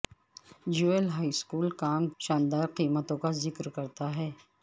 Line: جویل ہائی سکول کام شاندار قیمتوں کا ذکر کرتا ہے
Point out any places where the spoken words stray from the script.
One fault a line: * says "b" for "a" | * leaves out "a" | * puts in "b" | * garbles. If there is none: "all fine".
all fine